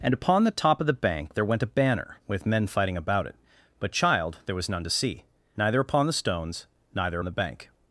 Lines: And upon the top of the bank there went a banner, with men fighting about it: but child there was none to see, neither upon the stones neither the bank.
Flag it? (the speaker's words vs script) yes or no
no